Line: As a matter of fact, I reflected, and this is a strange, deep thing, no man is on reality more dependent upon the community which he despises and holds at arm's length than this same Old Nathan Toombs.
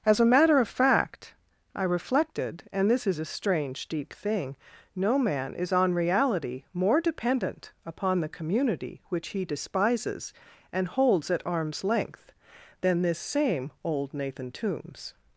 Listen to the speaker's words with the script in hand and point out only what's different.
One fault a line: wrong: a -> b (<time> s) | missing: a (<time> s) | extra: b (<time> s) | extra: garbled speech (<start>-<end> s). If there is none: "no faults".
no faults